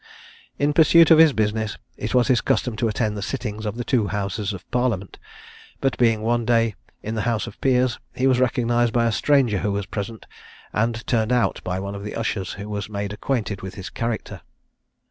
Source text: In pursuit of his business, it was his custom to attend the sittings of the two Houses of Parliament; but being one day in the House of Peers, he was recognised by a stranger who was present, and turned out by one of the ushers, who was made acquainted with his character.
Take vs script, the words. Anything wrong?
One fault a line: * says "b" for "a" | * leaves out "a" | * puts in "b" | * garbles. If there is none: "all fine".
all fine